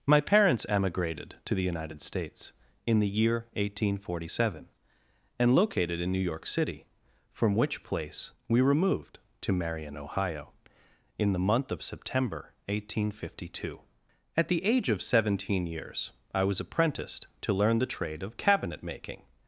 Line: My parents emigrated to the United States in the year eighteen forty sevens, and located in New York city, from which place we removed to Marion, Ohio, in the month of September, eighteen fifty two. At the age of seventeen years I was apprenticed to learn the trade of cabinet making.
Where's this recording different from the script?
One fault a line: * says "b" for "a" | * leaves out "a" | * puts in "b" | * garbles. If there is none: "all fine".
* says "seven" for "sevens"